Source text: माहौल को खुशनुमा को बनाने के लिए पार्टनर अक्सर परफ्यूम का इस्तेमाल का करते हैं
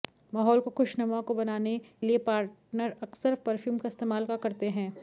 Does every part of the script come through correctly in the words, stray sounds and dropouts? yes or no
no